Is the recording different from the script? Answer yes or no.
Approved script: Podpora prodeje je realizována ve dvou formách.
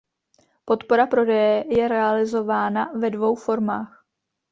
no